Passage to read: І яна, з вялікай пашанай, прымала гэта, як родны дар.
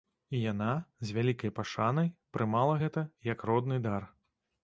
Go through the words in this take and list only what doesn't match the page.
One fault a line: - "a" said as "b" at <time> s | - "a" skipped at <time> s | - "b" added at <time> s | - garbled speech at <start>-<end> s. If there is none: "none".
none